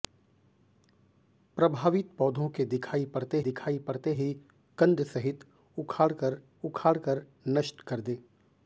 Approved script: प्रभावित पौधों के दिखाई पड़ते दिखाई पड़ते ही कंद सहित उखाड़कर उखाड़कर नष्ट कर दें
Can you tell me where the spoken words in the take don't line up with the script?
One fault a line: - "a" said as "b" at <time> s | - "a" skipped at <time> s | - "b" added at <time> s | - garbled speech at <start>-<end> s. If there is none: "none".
none